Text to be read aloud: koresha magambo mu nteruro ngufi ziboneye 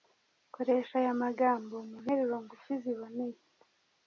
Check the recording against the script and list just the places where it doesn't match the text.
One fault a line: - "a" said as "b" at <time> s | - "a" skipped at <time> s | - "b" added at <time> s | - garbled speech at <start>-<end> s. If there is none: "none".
- "aya" added at 1.0 s